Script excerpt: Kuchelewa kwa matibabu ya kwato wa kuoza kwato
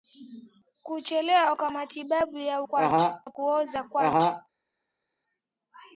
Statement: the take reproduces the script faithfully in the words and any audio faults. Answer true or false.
true